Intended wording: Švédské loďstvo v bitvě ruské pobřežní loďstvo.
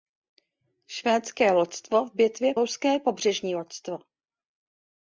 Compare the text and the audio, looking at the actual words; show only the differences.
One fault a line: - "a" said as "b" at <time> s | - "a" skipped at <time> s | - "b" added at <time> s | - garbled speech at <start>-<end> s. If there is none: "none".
none